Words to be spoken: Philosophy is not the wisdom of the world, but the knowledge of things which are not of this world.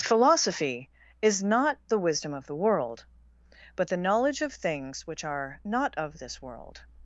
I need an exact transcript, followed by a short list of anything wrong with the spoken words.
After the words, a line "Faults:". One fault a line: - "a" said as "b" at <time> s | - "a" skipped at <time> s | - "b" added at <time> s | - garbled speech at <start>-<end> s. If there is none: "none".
Philosophy is not the wisdom of the world, but the knowledge of things which are not of this world.
Faults:
none